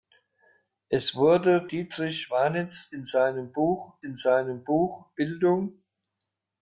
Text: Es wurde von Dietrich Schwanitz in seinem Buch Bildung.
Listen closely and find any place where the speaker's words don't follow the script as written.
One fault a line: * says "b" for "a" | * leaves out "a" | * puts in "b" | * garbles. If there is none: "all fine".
* leaves out "von"
* puts in "in seinem Buch"